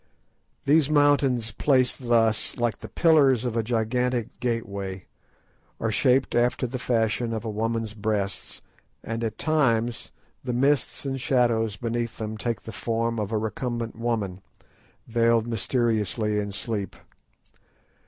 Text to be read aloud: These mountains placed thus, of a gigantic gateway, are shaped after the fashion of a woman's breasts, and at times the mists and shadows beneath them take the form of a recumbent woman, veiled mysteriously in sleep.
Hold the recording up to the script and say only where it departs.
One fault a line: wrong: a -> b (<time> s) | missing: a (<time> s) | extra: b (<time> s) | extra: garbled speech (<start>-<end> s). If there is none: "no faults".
extra: like the pillars (2.6 s)